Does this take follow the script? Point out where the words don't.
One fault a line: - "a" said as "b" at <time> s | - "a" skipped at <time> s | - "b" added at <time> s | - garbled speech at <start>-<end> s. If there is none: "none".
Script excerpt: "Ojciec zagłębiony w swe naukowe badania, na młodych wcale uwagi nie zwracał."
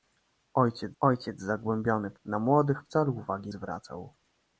- "ojciec" added at 1.0 s
- "swe naukowe badania" skipped at 2.2 s
- "nie" skipped at 3.5 s